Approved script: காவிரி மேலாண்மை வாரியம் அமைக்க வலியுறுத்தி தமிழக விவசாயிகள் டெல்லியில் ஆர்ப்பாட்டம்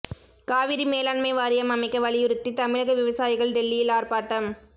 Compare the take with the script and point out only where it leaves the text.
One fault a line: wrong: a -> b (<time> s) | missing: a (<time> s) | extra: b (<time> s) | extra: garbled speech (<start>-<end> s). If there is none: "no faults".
no faults